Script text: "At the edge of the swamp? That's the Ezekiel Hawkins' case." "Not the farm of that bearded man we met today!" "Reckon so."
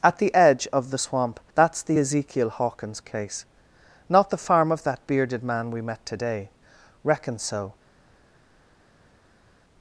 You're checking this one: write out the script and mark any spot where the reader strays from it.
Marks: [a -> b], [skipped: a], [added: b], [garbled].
"At the edge of the swamp? That's the Ezekiel Hawkins' case." "Not the farm of that bearded man we met today!" "Reckon so."